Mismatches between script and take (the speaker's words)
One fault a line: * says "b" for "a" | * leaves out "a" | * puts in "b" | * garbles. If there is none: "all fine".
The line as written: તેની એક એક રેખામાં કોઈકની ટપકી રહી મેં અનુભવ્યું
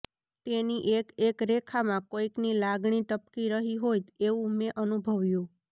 * puts in "લાગણી"
* puts in "હોય એવું"